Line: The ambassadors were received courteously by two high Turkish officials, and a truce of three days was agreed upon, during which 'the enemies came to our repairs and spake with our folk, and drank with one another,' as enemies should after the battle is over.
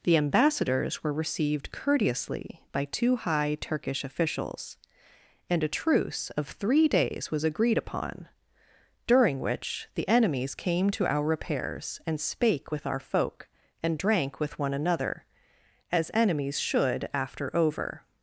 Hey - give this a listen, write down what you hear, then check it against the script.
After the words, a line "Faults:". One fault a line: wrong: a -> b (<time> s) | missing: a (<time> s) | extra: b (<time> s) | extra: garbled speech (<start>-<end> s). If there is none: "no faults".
The ambassadors were received courteously by two high Turkish officials, and a truce of three days was agreed upon, during which 'the enemies came to our repairs and spake with our folk, and drank with one another,' as enemies should after over.
Faults:
missing: the battle is (17.5 s)